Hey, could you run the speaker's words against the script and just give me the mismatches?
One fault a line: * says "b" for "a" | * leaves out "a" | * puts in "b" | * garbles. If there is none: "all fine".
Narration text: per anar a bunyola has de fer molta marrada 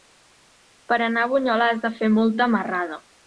all fine